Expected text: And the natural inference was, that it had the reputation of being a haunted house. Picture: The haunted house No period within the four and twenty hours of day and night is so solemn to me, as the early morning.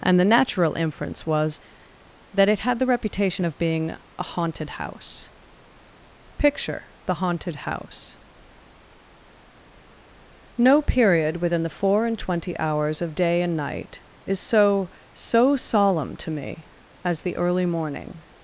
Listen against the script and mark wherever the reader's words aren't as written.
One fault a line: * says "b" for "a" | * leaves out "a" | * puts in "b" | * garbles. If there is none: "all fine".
* puts in "so"